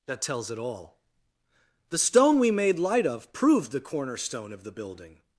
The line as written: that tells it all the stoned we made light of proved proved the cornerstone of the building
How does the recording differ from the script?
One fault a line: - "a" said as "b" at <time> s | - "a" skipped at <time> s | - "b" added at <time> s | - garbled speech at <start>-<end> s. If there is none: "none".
- "stoned" said as "stone" at 2.0 s
- "proved" skipped at 3.7 s